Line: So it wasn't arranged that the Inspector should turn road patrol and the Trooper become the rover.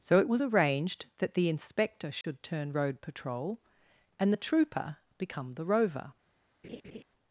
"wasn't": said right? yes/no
no